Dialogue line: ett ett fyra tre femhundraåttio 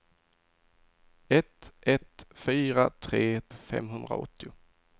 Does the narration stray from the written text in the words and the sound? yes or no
no